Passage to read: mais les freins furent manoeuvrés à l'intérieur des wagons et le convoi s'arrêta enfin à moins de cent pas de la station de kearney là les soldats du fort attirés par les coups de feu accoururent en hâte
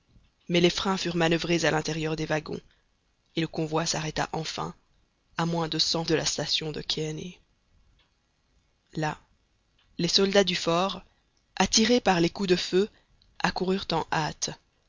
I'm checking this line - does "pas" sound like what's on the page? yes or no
no